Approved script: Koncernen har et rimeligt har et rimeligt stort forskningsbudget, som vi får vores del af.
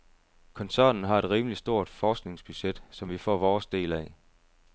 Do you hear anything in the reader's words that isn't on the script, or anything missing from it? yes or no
yes